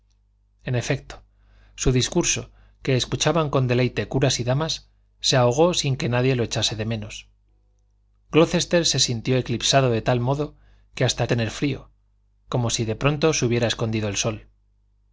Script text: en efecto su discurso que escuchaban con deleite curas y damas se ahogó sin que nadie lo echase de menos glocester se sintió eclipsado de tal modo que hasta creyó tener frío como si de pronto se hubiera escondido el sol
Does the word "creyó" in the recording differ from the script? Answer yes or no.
yes